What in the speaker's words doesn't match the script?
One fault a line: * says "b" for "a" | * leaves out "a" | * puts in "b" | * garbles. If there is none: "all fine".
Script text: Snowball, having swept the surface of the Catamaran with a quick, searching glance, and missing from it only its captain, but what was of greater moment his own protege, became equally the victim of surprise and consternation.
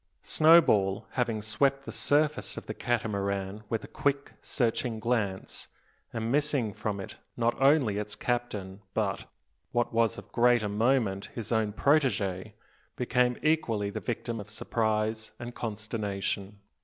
* puts in "not"